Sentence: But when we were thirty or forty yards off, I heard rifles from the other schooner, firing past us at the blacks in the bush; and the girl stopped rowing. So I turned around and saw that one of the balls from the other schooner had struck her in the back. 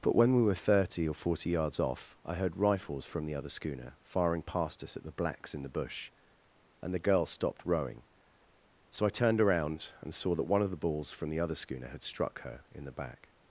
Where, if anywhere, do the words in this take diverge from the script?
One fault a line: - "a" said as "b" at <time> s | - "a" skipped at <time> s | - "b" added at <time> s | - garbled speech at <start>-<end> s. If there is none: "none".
none